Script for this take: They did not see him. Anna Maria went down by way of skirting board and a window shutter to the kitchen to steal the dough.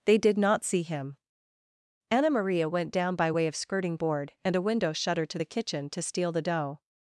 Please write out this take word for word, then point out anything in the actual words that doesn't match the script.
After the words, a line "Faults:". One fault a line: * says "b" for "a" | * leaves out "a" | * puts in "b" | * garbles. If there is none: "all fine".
They did not see him. Anna Maria went down by way of skirting board and a window shutter to the kitchen to steal the dough.
Faults:
all fine